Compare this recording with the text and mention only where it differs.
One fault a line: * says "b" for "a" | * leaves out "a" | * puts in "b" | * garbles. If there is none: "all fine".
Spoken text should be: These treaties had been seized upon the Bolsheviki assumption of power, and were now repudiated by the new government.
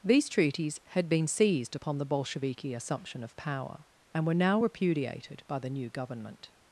all fine